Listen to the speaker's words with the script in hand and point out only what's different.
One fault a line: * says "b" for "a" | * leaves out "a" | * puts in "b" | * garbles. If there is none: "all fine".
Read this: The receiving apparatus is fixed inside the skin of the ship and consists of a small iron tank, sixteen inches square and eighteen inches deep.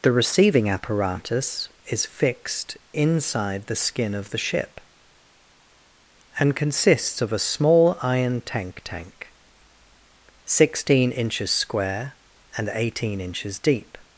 * puts in "tank"